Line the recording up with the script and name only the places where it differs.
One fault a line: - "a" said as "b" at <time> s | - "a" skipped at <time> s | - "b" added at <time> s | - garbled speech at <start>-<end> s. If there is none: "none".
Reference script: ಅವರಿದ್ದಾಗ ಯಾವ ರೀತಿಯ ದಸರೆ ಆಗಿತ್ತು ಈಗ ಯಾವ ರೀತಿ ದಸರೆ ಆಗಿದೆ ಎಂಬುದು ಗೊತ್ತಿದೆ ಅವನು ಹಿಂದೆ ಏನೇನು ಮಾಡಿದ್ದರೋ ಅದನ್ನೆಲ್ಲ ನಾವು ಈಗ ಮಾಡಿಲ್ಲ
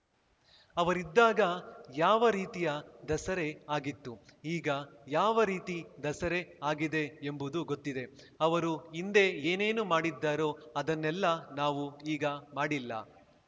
- "ಅವನು" said as "ಅವರು" at 8.4 s